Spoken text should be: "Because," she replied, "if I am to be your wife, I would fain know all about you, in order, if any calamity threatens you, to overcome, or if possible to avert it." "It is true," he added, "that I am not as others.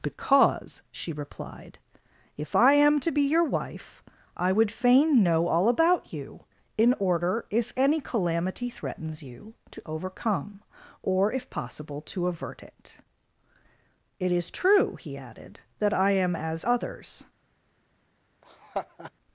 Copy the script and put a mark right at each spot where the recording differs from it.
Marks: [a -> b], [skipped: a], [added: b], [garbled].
"Because," she replied, "if I am to be your wife, I would fain know all about you, in order, if any calamity threatens you, to overcome, or if possible to avert it." "It is true," he added, "that I am [skipped: not] as others.